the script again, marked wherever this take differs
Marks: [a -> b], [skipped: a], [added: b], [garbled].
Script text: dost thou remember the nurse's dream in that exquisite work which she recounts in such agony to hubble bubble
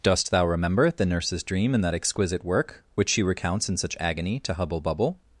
dost thou remember the nurse's dream in that exquisite work which she recounts in such agony to hubble bubble